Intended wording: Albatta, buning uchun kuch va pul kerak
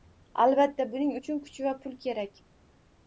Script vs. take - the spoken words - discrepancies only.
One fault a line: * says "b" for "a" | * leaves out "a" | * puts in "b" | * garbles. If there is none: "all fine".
all fine